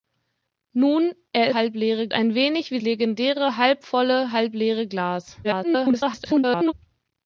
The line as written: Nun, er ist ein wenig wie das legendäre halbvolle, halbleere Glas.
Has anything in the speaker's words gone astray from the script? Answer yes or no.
yes